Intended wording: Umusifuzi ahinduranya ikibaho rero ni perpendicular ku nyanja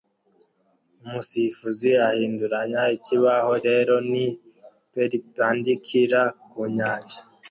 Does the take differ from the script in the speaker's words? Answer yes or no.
no